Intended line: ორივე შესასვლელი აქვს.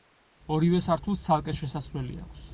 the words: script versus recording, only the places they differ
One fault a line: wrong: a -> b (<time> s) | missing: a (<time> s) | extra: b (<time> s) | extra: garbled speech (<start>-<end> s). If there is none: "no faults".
extra: სართულს ცალკე (0.8 s)